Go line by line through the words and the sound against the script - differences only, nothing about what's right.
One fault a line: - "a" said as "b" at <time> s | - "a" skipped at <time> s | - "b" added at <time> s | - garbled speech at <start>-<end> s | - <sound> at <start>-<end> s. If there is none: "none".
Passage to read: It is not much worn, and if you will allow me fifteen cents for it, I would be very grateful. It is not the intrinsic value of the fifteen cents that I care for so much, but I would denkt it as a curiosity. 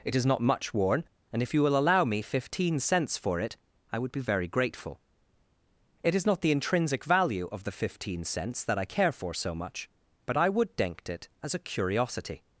none